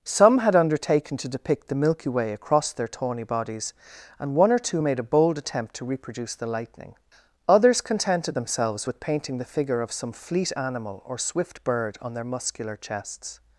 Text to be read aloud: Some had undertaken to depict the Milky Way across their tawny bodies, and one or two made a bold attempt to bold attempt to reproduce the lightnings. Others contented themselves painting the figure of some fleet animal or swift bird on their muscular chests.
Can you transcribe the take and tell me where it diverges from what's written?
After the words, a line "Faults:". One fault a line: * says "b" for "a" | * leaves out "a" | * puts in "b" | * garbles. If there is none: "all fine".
Some had undertaken to depict the Milky Way across their tawny bodies, and one or two made a bold attempt to reproduce the lightning. Others contented themselves with painting the figure of some fleet animal or swift bird on their muscular chests.
Faults:
* leaves out "bold attempt to"
* says "lightning" for "lightnings"
* puts in "with"